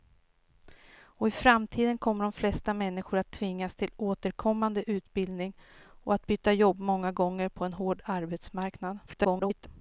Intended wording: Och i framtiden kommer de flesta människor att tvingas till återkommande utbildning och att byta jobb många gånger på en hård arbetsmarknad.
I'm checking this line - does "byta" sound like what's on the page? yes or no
yes